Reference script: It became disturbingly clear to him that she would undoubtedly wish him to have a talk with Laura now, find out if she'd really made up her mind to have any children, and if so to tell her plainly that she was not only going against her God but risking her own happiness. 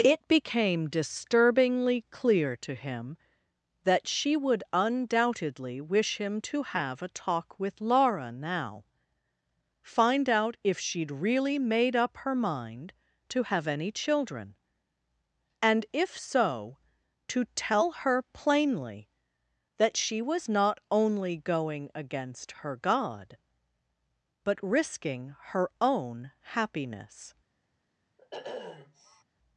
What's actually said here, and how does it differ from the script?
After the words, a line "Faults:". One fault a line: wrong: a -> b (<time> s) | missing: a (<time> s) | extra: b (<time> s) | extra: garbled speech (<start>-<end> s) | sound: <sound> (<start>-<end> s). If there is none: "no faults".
It became disturbingly clear to him that she would undoubtedly wish him to have a talk with Laura now, find out if she'd really made up her mind to have any children, and if so to tell her plainly that she was not only going against her God but risking her own happiness.
Faults:
sound: sniff (28.2-29.2 s)